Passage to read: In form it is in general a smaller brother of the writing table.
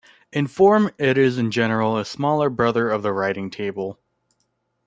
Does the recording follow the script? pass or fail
pass